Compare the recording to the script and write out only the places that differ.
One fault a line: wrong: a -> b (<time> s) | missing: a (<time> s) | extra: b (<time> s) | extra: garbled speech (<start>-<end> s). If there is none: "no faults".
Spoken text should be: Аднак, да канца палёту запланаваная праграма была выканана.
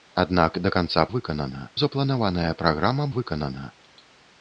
wrong: палёту -> выканана (1.2 s)
missing: была (3.1 s)